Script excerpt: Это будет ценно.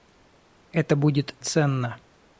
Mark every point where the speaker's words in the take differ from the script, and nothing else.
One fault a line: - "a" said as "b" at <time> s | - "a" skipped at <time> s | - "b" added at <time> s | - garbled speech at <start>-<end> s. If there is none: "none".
none